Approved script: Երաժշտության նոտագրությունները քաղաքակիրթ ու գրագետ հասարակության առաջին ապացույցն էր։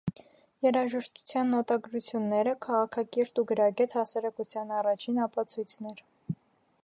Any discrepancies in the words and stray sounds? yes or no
no